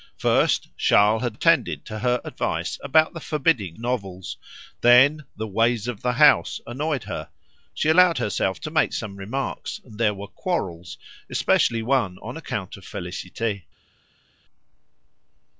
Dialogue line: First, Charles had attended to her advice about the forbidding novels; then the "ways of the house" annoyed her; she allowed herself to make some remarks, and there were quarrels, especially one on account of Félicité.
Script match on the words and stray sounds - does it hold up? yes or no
yes